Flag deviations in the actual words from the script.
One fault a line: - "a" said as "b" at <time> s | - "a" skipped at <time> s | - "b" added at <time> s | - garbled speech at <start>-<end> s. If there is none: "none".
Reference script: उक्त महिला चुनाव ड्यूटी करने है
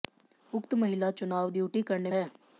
none